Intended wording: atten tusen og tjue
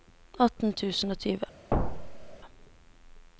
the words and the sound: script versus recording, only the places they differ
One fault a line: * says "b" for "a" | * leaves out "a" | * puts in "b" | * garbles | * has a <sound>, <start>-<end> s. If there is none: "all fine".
* has a thud, 1.7-2.4 s